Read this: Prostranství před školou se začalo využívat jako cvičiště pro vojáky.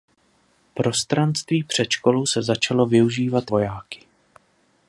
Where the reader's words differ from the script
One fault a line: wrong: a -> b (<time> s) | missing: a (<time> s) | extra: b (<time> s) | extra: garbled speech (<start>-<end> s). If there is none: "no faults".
missing: jako cvičiště pro (3.5 s)